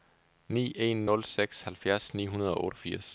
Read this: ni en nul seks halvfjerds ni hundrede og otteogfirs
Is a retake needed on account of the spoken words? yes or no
no